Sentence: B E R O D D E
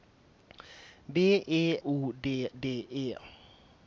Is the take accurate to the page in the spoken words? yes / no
no